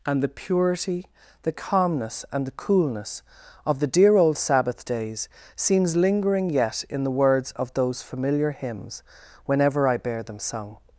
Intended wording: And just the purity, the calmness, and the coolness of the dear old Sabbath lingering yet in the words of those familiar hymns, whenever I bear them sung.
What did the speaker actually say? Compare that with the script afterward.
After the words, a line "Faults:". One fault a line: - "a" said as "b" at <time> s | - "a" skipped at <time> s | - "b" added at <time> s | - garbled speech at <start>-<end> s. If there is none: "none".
And the purity, the calmness, and the coolness of the dear old Sabbath days seems lingering yet in the words of those familiar hymns, whenever I bear them sung.
Faults:
- "just" skipped at 0.2 s
- "days seems" added at 4.9 s